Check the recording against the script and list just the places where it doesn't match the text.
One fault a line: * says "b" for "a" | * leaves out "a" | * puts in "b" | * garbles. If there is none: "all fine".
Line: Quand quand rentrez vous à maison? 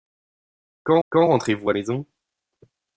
all fine